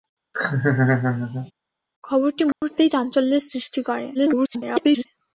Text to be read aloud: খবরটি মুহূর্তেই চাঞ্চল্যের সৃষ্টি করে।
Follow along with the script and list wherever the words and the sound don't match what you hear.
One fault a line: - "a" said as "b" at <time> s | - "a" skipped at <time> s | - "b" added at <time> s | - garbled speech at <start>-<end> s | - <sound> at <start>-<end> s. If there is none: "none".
- laugh at 0.3-1.5 s
- dropout at 2.5-2.6 s
- garbled speech at 4.1-5.1 s